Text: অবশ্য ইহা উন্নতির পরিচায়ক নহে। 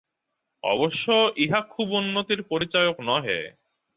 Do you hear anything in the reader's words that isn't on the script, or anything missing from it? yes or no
yes